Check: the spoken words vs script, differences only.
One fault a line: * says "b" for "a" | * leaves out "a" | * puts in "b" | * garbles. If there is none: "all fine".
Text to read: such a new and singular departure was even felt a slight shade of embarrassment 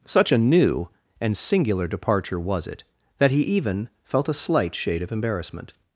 * puts in "it that he"